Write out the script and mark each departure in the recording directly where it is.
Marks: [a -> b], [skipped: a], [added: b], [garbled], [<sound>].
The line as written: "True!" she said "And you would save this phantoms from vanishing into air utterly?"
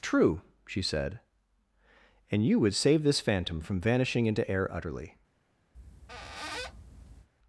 "True!" she said "And you would save this [phantoms -> phantom] from vanishing into air utterly?" [squeak]